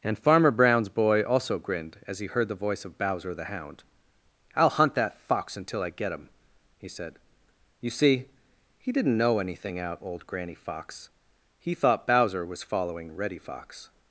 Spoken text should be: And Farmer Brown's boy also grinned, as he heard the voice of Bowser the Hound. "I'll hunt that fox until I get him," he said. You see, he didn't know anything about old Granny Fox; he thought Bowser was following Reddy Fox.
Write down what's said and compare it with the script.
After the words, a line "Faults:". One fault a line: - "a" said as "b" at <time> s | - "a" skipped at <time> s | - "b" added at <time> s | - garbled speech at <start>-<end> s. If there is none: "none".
And Farmer Brown's boy also grinned, as he heard the voice of Bowser the Hound. "I'll hunt that fox until I get him," he said. You see, he didn't know anything out old Granny Fox; he thought Bowser was following Reddy Fox.
Faults:
- "about" said as "out" at 9.8 s